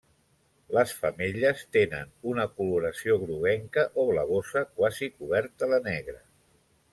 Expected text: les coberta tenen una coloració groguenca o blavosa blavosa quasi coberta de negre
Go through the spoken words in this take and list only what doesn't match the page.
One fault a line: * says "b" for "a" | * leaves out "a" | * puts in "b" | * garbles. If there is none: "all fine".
* says "femelles" for "coberta"
* leaves out "blavosa"